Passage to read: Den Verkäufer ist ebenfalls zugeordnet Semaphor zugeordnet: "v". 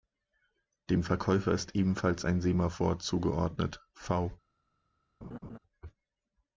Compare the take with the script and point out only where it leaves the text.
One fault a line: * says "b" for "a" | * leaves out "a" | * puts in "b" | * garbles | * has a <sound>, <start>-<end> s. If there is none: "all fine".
* says "Dem" for "Den"
* says "ein" for "zugeordnet"
* has a laugh, 5.2-5.6 s